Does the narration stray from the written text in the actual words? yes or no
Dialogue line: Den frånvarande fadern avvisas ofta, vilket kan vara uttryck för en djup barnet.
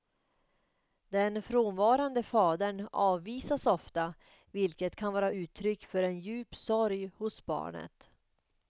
yes